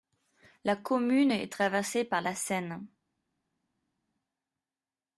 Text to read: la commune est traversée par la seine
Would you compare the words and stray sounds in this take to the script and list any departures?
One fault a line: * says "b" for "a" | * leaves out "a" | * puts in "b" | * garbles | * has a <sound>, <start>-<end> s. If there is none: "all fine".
all fine